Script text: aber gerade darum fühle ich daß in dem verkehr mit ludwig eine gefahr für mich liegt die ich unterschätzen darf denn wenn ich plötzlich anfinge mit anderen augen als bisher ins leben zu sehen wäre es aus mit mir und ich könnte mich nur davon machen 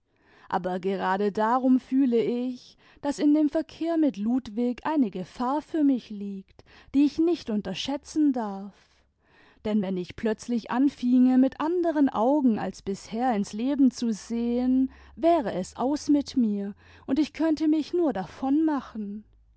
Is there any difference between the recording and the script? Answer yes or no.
yes